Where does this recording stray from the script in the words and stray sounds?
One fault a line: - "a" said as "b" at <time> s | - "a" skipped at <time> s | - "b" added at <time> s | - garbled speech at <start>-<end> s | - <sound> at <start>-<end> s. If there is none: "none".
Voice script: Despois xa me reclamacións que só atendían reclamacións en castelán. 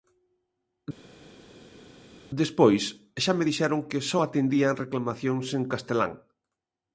- "reclamacións" said as "dixeron" at 3.5 s